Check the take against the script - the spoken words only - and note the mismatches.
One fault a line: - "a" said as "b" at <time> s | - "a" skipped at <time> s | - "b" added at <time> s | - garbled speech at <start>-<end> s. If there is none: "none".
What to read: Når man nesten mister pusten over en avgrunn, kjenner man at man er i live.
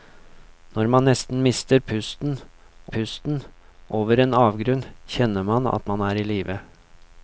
- "pusten" added at 3.0 s